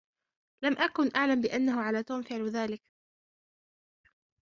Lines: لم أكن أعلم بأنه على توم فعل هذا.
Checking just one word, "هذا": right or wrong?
wrong